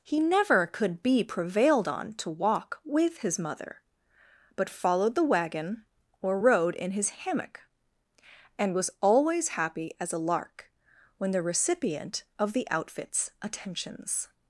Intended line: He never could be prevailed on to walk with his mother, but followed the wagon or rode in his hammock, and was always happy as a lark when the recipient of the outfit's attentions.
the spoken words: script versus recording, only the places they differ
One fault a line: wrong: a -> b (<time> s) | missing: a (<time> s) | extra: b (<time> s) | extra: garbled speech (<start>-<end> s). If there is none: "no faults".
no faults